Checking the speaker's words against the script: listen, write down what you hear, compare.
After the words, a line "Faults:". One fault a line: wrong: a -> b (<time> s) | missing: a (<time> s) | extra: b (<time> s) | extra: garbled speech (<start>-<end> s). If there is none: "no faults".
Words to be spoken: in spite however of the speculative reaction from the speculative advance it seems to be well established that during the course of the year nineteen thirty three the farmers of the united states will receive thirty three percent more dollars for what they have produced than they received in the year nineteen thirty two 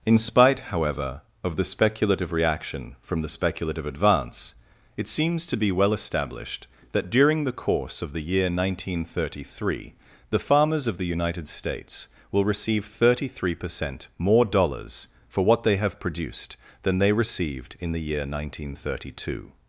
in spite however of the speculative reaction from the speculative advance it seems to be well established that during the course of the year nineteen thirty three the farmers of the united states will receive thirty three percent more dollars for what they have produced than they received in the year nineteen thirty two
Faults:
no faults